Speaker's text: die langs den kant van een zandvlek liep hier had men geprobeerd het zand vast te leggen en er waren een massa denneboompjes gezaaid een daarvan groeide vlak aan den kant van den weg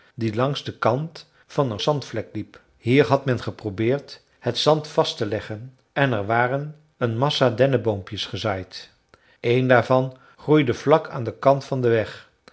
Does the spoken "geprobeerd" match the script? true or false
true